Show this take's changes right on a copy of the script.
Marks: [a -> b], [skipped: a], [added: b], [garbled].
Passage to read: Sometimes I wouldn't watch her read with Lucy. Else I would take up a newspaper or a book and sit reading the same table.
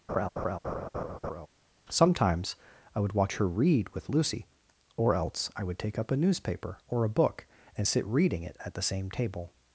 Sometimes I [wouldn't -> would] watch her read with Lucy. [added: Or] Else I would take up a newspaper or a book and sit reading [added: it at] the same table.